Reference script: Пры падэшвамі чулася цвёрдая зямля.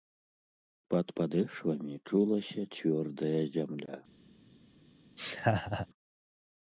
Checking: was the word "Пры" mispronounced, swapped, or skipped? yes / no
yes